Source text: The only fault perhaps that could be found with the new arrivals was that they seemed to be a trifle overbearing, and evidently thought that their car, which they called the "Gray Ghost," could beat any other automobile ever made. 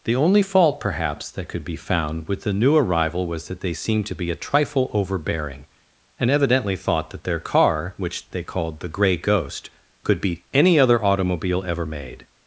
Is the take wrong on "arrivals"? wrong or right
wrong